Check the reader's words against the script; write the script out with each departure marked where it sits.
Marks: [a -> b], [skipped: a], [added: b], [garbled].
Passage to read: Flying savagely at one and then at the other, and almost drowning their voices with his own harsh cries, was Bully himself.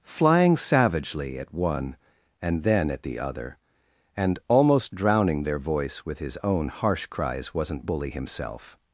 Flying savagely at one and then at the other, and almost drowning their [voices -> voice] with his own harsh cries, [was -> wasn't] Bully himself.